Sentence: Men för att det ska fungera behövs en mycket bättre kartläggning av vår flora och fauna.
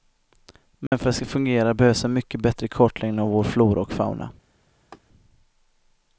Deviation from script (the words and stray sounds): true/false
true